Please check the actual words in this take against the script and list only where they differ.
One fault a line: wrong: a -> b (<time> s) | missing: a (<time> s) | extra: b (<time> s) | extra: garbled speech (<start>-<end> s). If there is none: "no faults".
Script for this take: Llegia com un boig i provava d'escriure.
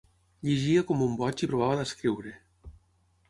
no faults